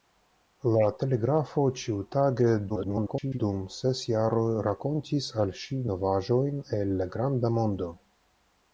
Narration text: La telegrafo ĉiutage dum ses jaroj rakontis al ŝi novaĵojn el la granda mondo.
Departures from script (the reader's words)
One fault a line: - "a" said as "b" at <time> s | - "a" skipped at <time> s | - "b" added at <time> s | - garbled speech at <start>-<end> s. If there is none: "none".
- garbled speech at 2.7-3.4 s